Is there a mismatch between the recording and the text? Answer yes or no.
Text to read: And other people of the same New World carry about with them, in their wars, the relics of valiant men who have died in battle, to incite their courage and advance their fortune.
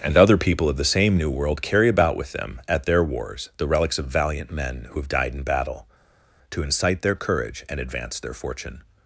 yes